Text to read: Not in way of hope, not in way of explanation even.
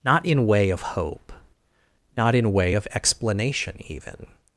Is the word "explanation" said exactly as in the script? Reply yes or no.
yes